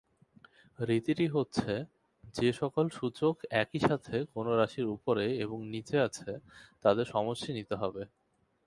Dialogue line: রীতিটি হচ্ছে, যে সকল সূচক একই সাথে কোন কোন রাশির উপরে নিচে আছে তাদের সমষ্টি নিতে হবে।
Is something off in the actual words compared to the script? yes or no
yes